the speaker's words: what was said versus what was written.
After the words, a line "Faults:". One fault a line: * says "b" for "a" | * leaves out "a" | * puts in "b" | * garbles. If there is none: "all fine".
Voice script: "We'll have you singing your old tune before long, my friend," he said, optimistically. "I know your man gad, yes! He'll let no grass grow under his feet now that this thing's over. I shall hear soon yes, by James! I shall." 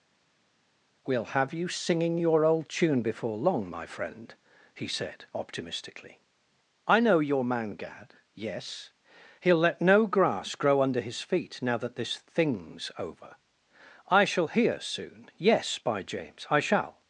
"We'll have you singing your old tune before long, my friend," he said, optimistically. "I know your man gad, yes! He'll let no grass grow under his feet now that this thing's over. I shall hear soon yes, by James! I shall."
Faults:
all fine